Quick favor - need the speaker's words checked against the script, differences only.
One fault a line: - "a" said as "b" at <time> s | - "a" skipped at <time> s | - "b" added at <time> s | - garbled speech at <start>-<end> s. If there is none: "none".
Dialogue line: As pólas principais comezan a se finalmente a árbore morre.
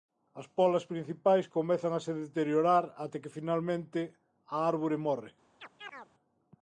- "deteriorar até que" added at 2.2 s